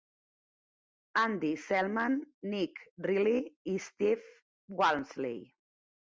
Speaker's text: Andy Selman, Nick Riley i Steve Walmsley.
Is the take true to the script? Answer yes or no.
yes